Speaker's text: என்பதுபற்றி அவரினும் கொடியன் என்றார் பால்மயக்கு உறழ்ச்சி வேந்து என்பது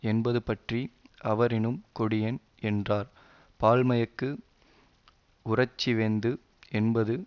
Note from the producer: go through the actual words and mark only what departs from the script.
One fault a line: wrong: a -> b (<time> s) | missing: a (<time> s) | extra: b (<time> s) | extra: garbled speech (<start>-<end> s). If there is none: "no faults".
no faults